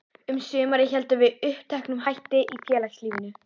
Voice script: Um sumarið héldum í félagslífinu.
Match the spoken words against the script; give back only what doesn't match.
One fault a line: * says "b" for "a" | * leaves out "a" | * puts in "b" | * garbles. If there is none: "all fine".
* puts in "við uppteknum hætti"